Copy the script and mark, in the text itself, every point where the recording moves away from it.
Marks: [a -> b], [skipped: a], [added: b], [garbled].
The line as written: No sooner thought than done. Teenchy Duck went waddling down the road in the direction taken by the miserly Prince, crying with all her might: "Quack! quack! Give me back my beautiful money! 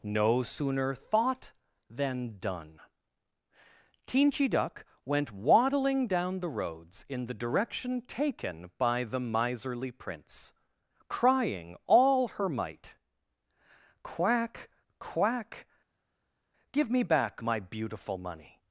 No sooner thought than done. Teenchy Duck went waddling down the [road -> roads] in the direction taken by the miserly Prince, crying [skipped: with] all her might: "Quack! quack! Give me back my beautiful money!